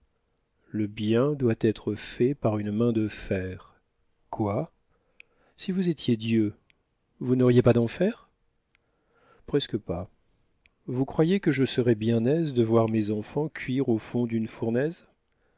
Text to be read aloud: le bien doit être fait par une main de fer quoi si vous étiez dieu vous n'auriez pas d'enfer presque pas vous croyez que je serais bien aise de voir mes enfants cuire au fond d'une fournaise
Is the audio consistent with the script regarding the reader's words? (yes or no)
yes